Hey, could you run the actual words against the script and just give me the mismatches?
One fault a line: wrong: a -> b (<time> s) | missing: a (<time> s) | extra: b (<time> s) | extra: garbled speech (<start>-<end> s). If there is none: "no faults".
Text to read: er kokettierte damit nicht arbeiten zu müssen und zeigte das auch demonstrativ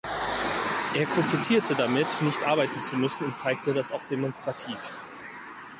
no faults